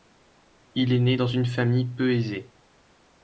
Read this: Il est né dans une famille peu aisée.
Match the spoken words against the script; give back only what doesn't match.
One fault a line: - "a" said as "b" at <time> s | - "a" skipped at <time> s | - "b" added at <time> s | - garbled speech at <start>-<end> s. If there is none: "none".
none